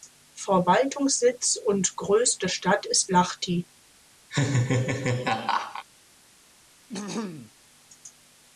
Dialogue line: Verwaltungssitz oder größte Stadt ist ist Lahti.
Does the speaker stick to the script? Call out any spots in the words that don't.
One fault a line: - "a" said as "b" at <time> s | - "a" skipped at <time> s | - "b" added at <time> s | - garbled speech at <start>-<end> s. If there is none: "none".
- "oder" said as "und" at 1.6 s
- "ist" skipped at 3.1 s